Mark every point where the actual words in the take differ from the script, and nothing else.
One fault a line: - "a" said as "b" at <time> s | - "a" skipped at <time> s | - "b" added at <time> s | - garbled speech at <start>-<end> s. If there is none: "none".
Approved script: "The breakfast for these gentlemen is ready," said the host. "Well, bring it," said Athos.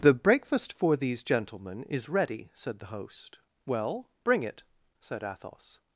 none